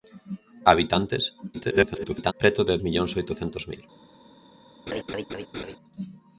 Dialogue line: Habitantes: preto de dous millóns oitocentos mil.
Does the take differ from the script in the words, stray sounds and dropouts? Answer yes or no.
yes